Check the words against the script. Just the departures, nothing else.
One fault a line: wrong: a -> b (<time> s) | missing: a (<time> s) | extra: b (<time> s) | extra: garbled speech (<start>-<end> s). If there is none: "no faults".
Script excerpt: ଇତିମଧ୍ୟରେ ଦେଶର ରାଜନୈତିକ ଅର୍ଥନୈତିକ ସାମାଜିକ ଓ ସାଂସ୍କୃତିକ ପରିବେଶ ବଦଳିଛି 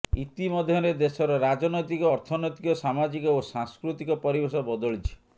no faults